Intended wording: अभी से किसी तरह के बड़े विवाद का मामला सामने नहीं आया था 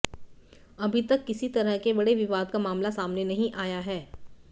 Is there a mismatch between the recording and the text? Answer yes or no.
yes